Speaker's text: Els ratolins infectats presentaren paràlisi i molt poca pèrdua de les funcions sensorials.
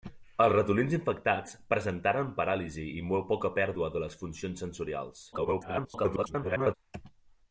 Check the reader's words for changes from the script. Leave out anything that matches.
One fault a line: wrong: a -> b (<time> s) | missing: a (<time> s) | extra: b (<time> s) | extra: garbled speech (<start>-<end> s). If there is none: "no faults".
extra: garbled speech (5.3-6.7 s)